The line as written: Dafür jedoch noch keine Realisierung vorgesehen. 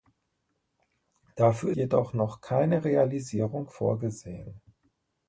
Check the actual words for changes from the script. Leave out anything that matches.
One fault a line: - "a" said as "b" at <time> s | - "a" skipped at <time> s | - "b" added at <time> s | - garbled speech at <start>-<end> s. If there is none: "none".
none